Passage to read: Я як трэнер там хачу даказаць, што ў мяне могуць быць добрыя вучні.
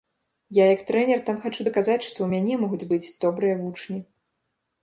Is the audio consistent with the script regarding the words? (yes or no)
yes